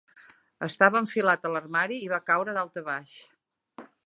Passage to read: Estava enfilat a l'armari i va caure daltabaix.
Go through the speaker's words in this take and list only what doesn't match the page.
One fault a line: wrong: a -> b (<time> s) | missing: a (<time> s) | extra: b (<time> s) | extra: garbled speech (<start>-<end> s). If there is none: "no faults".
no faults